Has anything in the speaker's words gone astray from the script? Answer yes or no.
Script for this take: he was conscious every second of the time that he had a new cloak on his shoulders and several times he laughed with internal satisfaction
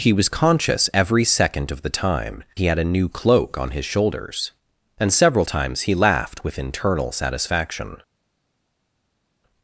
yes